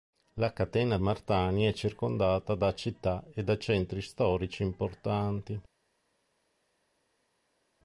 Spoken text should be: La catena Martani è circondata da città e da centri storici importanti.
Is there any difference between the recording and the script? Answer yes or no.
no